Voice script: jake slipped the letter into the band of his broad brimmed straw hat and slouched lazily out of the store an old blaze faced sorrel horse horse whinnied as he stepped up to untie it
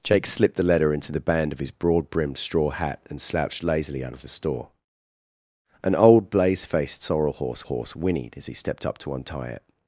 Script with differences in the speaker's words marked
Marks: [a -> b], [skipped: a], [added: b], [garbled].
jake slipped the letter into the band of his broad brimmed straw hat and slouched lazily out of the store an old blaze faced sorrel horse horse whinnied as he stepped up to untie it